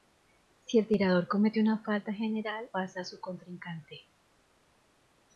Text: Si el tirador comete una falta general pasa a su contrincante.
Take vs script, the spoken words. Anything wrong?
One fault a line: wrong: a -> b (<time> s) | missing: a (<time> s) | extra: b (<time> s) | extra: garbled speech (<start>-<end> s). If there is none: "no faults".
no faults